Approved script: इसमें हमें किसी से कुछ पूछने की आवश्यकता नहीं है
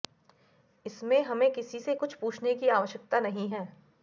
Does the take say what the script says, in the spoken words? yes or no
yes